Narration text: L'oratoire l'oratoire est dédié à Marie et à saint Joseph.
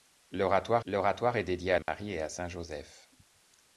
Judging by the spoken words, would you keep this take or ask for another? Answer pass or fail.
pass